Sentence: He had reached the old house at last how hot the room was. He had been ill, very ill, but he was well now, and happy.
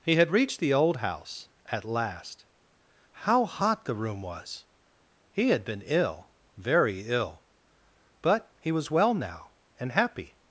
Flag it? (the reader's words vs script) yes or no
no